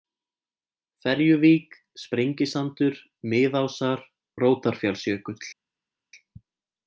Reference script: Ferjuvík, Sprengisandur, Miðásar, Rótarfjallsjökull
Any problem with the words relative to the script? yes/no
no